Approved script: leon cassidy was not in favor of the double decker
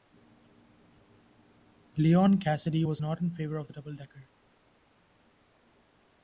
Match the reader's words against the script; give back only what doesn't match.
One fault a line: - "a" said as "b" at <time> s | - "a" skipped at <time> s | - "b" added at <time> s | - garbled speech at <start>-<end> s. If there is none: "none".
none